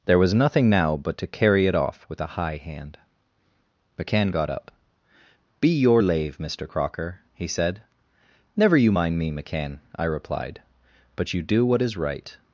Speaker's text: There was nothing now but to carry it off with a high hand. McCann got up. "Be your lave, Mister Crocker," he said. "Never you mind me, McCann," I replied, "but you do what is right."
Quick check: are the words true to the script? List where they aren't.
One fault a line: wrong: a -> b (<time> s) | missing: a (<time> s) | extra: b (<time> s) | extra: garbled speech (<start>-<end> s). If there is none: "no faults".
no faults